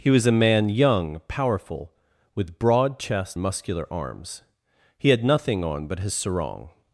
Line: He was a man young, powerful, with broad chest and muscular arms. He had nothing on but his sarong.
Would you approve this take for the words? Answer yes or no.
no